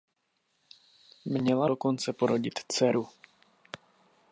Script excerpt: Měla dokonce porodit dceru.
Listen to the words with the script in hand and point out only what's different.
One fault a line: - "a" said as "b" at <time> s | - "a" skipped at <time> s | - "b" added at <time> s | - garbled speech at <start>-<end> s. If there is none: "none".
none